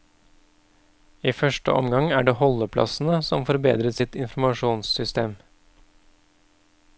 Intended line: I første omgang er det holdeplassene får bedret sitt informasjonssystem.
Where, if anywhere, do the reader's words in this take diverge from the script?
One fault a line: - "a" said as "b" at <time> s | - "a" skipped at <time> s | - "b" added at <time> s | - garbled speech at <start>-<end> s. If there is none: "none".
- "som" added at 3.3 s